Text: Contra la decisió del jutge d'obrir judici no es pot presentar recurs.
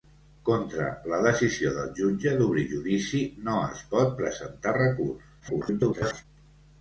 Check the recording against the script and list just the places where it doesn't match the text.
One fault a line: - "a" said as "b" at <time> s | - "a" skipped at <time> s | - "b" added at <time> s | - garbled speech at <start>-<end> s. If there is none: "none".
- garbled speech at 5.4-6.3 s